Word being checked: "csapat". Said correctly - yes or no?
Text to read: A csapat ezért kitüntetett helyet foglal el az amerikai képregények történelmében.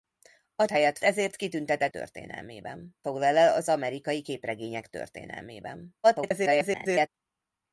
no